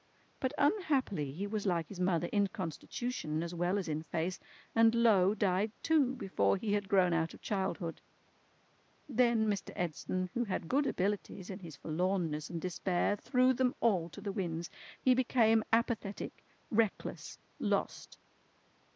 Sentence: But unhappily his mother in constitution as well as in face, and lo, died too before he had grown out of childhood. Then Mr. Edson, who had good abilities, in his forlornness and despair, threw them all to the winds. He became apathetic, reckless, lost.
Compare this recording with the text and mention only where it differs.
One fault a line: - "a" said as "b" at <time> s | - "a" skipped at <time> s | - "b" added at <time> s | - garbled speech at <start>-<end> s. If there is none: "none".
- "he was like" added at 1.3 s